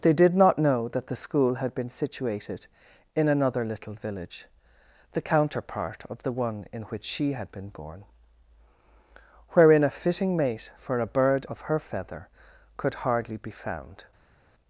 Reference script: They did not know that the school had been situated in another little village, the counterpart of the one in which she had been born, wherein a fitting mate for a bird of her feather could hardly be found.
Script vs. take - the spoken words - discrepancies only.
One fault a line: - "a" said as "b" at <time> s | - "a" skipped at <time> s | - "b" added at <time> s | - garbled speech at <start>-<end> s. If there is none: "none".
none